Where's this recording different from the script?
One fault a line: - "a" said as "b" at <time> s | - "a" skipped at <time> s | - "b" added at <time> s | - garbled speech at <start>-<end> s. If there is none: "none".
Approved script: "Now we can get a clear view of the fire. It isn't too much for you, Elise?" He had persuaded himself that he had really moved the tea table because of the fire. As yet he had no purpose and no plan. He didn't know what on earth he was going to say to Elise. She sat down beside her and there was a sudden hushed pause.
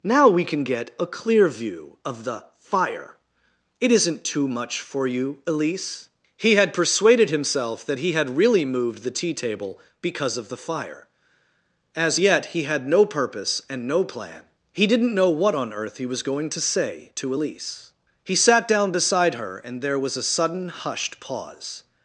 - "She" said as "He" at 18.2 s